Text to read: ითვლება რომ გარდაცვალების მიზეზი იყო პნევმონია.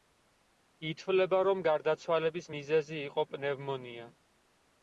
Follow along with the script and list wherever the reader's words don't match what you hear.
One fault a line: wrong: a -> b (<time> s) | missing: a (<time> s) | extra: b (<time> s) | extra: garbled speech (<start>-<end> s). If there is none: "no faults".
no faults